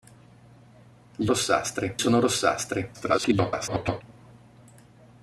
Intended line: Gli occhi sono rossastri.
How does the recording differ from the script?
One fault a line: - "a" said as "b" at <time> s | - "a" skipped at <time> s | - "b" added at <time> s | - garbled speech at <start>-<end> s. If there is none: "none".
- "occhi" said as "rossastri" at 1.3 s
- garbled speech at 2.9-4.0 s